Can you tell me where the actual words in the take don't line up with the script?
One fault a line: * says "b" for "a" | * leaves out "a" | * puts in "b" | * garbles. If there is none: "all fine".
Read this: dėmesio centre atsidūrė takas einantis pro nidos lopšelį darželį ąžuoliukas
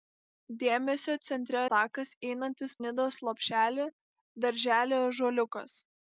* leaves out "atsidūrė"
* leaves out "pro"